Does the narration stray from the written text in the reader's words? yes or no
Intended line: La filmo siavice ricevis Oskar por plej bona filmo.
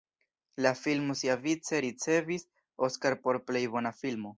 no